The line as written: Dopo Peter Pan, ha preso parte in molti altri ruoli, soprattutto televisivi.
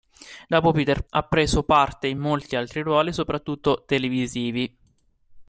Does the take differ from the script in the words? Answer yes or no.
yes